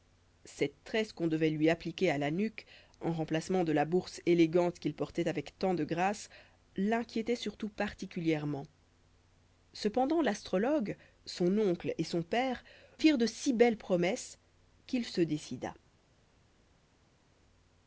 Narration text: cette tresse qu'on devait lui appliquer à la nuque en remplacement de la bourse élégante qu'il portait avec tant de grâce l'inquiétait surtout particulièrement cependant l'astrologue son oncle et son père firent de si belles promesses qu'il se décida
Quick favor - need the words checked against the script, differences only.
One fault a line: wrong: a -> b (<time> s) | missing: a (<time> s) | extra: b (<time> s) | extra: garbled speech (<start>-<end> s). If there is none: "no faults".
no faults